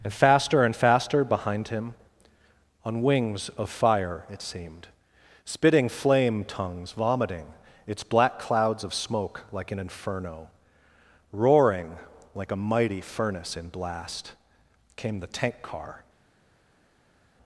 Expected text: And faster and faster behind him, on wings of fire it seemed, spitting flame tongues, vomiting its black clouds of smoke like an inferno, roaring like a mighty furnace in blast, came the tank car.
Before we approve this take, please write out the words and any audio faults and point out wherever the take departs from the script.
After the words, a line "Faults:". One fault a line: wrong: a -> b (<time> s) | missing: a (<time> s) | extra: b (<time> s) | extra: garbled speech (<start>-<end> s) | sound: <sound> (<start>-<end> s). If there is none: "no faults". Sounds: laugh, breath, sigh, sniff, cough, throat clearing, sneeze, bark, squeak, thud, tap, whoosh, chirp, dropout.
And faster and faster behind him, on wings of fire it seemed, spitting flame tongues, vomiting its black clouds of smoke like an inferno, roaring like a mighty furnace in blast, came the tank car.
Faults:
no faults